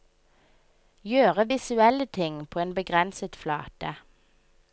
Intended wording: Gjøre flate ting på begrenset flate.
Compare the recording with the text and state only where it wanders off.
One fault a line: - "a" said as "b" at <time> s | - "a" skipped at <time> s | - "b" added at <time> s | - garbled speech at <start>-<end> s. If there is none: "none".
- "flate" said as "visuelle" at 1.5 s
- "en" added at 2.6 s